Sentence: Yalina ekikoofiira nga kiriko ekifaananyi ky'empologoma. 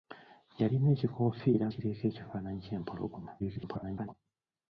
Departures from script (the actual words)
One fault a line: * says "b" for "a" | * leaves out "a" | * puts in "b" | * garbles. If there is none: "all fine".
* leaves out "nga"
* garbles